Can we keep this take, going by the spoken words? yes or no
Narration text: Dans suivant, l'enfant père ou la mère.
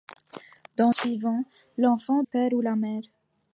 yes